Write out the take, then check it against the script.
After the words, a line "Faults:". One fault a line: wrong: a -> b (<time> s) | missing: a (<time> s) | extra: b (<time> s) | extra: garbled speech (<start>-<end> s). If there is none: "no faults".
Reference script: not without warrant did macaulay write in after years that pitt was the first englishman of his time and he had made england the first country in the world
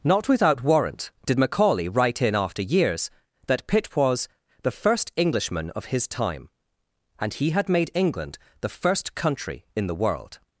not without warrant did macaulay write in after years that pitt was the first englishman of his time and he had made england the first country in the world
Faults:
no faults